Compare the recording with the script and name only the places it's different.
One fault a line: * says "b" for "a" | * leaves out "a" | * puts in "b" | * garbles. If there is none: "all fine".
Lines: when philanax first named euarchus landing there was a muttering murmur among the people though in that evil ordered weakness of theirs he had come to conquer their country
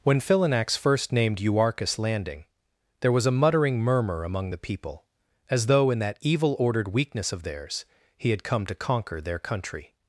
* puts in "as"